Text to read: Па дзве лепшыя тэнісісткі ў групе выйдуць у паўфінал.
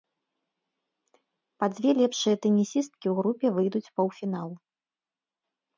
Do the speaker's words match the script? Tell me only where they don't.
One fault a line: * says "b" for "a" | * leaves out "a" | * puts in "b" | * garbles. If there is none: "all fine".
all fine